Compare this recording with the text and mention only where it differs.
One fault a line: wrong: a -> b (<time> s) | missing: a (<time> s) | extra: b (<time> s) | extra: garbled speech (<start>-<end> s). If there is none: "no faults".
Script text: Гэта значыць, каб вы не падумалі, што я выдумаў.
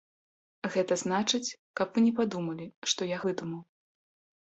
no faults